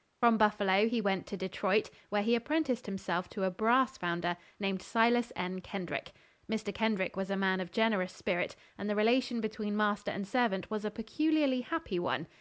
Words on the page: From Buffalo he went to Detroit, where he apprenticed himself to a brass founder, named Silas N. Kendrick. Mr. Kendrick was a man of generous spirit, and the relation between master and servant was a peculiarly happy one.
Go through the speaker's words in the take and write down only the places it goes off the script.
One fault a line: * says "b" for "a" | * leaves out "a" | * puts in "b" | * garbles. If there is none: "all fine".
all fine